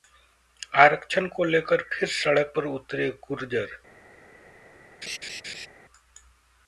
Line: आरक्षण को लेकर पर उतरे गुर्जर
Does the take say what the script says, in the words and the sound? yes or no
no